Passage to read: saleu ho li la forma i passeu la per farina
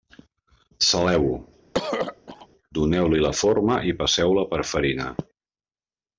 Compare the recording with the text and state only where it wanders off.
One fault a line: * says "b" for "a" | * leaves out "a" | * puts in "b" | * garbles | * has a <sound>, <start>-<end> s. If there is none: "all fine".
* has a throat clearing, 1.7-2.5 s
* puts in "doneu"